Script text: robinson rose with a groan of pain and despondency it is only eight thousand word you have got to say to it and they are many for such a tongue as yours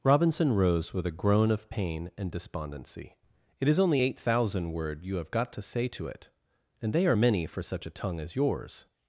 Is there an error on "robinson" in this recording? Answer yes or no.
no